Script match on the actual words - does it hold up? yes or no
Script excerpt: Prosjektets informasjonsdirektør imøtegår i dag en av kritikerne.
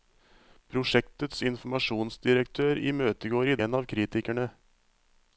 no